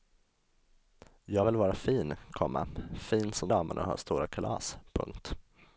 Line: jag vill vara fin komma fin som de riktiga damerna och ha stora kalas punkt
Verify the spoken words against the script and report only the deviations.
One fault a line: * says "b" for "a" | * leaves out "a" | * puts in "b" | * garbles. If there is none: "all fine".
* leaves out "de riktiga"